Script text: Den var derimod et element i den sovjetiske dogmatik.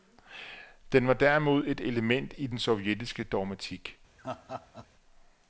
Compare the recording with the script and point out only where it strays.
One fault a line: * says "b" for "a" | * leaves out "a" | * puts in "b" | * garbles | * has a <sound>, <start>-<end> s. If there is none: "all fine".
* has a laugh, 4.2-4.9 s